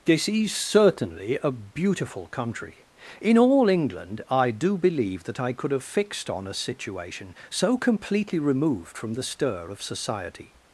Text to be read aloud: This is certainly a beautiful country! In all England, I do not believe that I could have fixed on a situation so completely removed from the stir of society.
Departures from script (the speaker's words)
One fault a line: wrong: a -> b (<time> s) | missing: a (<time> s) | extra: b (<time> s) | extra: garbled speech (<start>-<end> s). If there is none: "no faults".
missing: not (4.8 s)